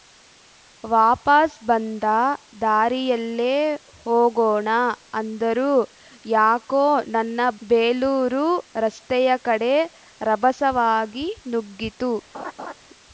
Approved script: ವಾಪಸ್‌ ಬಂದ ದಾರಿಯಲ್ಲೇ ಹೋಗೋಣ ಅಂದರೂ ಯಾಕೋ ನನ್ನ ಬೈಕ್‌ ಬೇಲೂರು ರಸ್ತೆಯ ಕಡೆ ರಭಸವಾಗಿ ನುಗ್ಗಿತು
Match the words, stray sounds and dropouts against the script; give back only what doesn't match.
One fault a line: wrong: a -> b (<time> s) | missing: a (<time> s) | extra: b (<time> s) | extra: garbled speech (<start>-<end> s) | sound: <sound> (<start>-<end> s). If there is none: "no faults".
missing: ಬೈಕ್ (7.4 s)
sound: laugh (12.3-12.7 s)